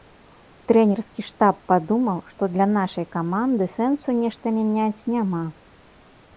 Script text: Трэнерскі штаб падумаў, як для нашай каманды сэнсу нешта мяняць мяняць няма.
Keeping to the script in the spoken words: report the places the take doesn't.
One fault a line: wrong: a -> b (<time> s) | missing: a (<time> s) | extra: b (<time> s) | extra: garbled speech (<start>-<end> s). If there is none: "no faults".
wrong: як -> што (2.3 s)
missing: мяняць (5.1 s)